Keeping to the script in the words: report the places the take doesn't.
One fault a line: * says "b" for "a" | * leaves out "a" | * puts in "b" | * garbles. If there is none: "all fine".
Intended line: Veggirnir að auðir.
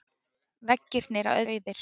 all fine